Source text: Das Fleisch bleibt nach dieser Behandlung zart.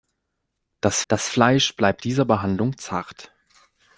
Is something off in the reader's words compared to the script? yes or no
yes